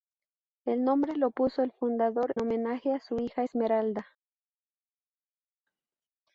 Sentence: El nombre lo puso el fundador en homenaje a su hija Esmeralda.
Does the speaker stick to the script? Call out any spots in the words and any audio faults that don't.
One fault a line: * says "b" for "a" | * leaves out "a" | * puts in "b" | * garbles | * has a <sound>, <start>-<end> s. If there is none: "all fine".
* leaves out "en"